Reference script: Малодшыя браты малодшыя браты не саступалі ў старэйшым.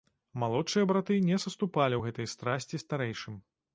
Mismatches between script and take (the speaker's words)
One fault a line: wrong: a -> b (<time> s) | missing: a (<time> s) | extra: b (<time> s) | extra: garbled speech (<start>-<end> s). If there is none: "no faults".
missing: малодшыя браты (1.2 s)
extra: гэтай страсці (2.1 s)